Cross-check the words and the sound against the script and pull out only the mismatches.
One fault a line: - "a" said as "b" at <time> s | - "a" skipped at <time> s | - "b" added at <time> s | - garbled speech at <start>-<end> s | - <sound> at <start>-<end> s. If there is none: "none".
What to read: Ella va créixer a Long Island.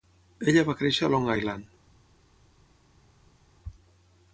none